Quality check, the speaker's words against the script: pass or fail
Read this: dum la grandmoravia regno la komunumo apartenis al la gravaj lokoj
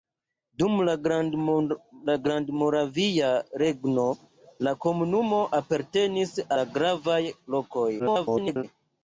fail